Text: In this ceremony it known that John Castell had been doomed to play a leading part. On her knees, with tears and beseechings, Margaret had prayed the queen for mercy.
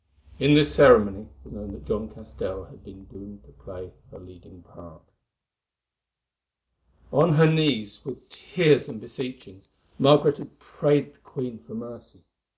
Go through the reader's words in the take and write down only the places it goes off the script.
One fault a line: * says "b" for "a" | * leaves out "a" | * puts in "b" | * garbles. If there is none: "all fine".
all fine